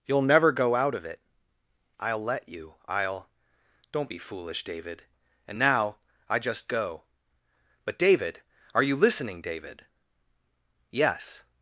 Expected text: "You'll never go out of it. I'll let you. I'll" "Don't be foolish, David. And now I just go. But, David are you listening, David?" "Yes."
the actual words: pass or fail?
pass